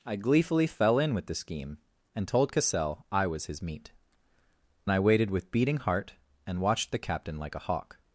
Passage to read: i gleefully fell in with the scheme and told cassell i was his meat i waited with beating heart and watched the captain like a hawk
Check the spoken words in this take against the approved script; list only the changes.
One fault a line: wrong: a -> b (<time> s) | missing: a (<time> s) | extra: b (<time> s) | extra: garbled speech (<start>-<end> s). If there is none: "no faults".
no faults